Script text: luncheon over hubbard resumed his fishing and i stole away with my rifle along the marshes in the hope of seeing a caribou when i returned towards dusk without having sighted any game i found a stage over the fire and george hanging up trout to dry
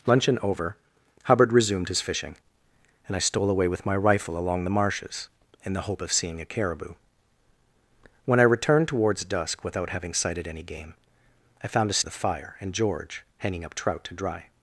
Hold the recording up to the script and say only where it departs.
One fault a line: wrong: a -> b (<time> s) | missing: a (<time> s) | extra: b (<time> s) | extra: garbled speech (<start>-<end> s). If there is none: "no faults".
missing: stage over (12.0 s)